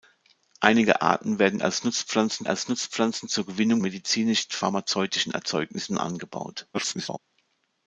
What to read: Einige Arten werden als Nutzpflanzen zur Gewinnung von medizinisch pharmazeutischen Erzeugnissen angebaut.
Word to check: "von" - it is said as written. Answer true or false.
false